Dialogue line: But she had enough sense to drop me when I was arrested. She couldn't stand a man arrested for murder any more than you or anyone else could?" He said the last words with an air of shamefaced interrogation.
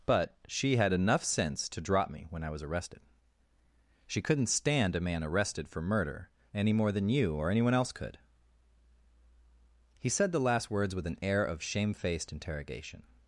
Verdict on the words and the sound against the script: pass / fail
pass